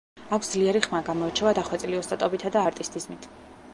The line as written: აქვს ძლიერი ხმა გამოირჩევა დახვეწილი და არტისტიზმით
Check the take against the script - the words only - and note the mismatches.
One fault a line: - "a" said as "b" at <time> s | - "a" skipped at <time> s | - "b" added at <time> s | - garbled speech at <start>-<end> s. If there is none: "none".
- "ოსტატობითა" added at 2.0 s